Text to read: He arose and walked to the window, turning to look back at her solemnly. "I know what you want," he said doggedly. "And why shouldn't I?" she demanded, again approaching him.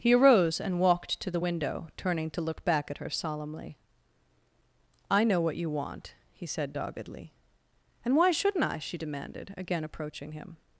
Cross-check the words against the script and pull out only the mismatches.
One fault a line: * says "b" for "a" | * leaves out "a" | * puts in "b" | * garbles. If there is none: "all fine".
all fine